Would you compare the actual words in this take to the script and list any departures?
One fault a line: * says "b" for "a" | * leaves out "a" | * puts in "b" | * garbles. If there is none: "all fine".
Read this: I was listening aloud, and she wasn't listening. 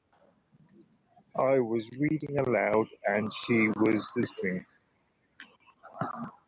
* says "reading" for "listening"
* says "was" for "wasn't"